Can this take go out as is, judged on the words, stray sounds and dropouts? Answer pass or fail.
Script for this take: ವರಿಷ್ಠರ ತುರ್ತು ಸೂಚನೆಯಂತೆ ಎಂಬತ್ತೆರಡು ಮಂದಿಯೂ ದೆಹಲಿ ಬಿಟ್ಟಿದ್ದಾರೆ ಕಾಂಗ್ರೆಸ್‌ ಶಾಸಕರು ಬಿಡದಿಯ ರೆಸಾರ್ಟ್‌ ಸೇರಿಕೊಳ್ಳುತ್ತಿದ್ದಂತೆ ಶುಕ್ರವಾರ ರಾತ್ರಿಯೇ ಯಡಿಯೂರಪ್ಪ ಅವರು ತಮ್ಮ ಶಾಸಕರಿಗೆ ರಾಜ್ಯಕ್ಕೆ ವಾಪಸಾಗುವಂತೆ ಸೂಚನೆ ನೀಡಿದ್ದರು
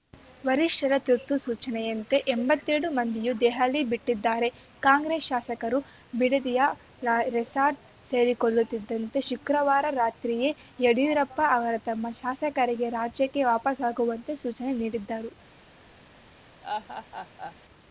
fail